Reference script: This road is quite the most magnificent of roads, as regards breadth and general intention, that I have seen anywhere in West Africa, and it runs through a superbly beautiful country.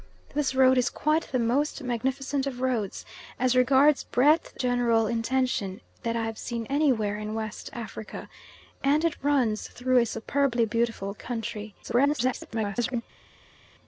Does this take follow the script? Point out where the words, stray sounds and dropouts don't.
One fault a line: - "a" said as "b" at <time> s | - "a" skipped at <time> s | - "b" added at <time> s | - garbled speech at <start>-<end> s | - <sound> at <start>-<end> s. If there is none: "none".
- "and" skipped at 4.6 s
- garbled speech at 11.8-13.0 s